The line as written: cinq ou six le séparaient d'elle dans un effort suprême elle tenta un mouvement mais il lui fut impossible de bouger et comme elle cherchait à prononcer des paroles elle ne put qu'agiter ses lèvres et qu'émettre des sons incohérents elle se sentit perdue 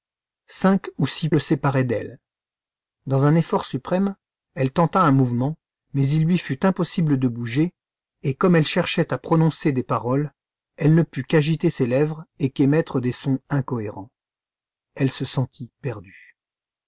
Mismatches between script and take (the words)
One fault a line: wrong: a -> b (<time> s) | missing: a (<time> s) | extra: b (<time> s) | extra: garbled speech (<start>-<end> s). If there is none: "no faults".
no faults